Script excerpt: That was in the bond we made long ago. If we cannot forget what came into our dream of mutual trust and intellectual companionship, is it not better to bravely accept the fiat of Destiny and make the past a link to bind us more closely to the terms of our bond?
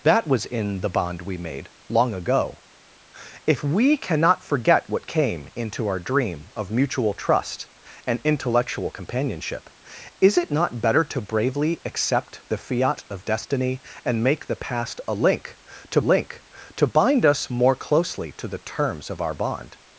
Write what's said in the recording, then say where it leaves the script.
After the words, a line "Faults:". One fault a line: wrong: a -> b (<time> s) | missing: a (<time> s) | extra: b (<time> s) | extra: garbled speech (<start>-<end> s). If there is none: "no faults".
That was in the bond we made long ago. If we cannot forget what came into our dream of mutual trust and intellectual companionship, is it not better to bravely accept the fiat of Destiny and make the past a link to link to bind us more closely to the terms of our bond?
Faults:
extra: link to (16.0 s)